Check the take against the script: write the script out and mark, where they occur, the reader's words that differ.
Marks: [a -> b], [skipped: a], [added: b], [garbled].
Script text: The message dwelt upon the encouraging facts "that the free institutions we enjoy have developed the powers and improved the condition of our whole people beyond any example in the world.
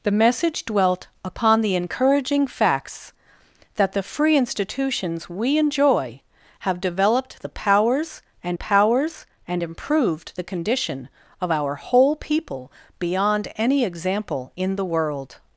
The message dwelt upon the encouraging facts "that the free institutions we enjoy have developed the powers and [added: powers and] improved the condition of our whole people beyond any example in the world.